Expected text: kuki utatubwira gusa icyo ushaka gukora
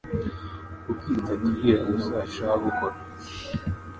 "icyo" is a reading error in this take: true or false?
true